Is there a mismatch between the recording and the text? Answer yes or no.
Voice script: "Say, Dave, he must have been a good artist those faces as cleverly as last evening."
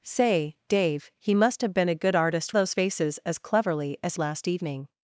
no